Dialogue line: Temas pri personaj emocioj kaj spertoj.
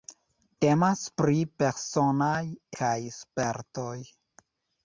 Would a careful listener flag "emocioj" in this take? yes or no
yes